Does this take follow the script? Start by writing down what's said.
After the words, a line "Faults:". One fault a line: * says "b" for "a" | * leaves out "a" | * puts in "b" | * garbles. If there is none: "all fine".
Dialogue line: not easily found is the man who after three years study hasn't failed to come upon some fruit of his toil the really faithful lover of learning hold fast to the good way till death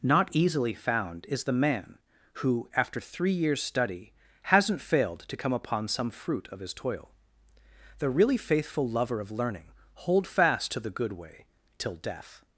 not easily found is the man who after three years study hasn't failed to come upon some fruit of his toil the really faithful lover of learning hold fast to the good way till death
Faults:
all fine